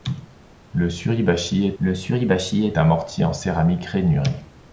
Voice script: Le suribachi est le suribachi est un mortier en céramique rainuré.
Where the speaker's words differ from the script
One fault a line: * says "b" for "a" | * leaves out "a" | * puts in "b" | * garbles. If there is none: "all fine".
all fine